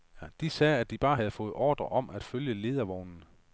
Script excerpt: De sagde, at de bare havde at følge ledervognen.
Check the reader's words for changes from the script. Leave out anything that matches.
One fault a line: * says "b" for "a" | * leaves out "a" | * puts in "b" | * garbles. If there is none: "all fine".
* puts in "fået ordre om"